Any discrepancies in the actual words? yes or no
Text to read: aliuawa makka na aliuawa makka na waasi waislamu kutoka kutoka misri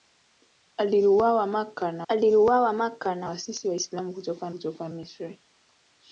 no